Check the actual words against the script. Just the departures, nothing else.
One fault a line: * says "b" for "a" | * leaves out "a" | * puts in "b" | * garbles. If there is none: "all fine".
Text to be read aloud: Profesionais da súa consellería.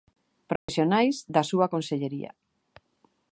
all fine